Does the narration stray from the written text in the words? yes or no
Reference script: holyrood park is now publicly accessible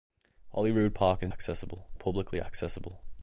yes